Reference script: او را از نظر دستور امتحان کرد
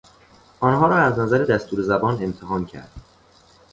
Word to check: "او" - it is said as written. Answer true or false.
false